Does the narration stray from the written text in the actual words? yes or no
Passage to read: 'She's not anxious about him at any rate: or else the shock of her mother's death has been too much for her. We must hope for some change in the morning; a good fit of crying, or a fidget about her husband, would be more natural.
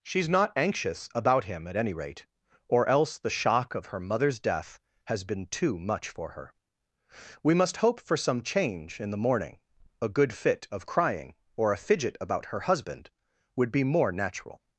no